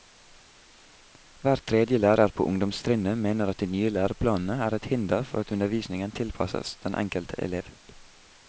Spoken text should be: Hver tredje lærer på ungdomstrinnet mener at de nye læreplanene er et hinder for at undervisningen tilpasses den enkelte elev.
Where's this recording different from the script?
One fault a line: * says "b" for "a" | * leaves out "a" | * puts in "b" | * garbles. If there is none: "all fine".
all fine